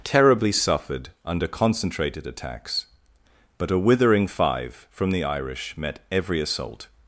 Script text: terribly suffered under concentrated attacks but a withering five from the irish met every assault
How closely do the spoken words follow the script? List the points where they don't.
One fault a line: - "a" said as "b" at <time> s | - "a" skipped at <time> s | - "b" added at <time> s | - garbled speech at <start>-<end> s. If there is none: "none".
none